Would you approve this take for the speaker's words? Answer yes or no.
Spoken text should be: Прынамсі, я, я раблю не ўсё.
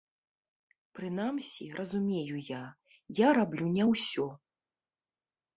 no